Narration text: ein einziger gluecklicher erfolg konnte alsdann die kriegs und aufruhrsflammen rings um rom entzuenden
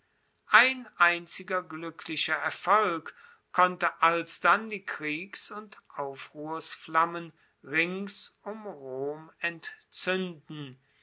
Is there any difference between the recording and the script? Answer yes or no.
no